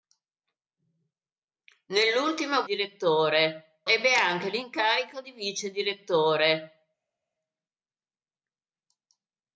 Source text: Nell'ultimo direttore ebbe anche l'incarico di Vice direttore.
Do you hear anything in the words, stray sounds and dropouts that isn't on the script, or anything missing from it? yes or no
no